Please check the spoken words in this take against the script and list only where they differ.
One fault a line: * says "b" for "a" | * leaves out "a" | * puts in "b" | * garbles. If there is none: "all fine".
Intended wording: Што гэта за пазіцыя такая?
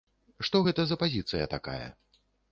all fine